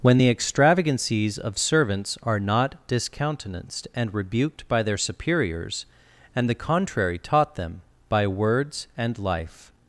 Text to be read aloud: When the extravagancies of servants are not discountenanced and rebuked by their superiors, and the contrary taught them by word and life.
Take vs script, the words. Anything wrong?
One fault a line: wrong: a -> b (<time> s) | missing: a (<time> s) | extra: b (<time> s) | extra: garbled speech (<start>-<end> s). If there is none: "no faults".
wrong: word -> words (8.3 s)